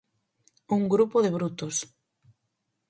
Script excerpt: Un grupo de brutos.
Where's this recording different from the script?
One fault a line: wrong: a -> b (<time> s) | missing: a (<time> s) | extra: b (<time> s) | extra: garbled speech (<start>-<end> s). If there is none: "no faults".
no faults